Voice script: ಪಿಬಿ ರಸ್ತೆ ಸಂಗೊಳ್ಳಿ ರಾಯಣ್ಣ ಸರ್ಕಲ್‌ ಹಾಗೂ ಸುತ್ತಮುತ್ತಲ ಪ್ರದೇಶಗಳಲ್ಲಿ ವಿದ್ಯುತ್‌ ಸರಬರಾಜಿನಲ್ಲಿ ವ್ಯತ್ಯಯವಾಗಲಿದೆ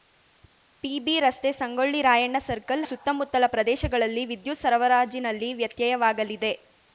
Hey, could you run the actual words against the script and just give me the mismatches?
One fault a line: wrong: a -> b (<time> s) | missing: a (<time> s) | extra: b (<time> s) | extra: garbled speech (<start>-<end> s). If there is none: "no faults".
missing: ಹಾಗೂ (2.8 s)